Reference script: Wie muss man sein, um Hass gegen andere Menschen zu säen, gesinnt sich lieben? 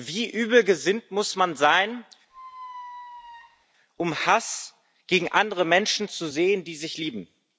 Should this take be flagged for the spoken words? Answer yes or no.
yes